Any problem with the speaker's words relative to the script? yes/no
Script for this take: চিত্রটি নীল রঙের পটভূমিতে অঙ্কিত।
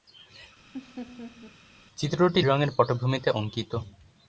yes